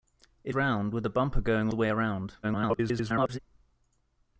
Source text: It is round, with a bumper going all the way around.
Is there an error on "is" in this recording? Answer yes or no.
yes